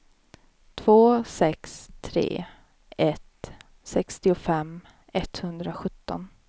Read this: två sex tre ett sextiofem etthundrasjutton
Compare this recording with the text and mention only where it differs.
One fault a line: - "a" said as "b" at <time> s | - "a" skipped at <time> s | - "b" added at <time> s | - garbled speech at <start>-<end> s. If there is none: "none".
none